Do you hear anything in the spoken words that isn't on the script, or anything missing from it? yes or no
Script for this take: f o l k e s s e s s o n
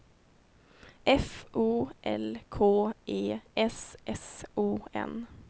yes